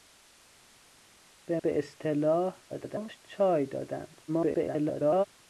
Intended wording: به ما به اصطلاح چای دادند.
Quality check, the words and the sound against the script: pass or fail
fail